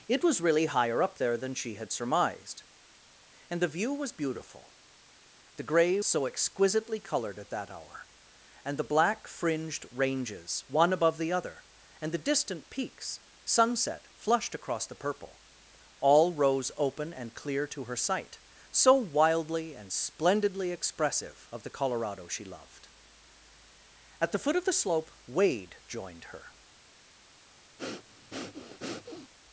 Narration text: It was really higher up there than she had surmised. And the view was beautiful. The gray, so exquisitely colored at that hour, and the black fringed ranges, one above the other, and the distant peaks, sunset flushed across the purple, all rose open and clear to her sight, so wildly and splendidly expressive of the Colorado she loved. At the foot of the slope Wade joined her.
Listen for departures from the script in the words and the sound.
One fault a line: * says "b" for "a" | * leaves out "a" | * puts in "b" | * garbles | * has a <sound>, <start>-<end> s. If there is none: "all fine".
* has a breath, 27.8-29.3 s